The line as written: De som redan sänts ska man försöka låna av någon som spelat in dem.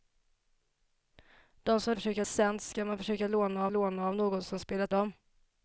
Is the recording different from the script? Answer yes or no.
yes